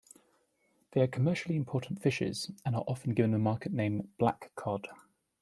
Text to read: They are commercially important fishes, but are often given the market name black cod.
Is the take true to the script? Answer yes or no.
no